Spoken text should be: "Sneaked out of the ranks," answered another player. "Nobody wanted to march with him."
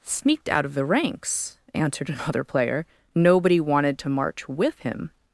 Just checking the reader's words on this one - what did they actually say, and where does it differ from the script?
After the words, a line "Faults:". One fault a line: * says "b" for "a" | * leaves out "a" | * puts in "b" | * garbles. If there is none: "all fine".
"Sneaked out of the ranks," answered another player. "Nobody wanted to march with him."
Faults:
all fine